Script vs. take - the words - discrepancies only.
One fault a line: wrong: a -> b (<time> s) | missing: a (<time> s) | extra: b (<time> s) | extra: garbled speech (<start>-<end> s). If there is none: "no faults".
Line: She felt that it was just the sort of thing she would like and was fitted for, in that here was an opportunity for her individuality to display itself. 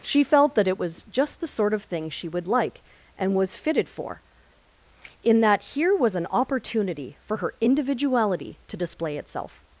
no faults